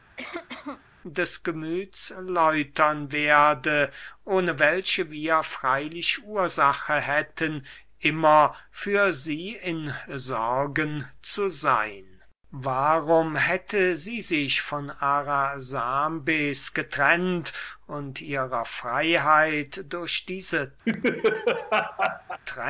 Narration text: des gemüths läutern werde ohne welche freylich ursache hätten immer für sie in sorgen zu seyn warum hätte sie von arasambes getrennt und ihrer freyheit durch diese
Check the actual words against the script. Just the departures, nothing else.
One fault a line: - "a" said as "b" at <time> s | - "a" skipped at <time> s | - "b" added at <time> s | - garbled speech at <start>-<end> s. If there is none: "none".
- "wir" added at 5.1 s
- "sich" added at 14.2 s